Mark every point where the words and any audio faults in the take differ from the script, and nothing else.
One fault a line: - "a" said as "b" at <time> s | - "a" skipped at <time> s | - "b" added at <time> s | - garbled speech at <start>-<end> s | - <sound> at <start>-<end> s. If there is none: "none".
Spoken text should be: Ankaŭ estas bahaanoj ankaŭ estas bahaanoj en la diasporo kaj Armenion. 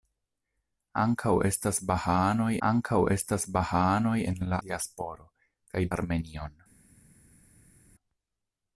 none